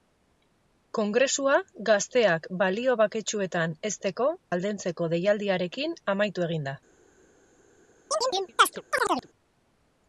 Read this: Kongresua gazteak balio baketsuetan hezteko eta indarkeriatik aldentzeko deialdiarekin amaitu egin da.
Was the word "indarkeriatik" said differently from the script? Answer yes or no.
yes